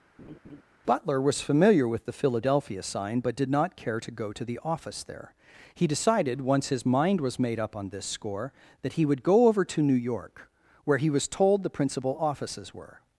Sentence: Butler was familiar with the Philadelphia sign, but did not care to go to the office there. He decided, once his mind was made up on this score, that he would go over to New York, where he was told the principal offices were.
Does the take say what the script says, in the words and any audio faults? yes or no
no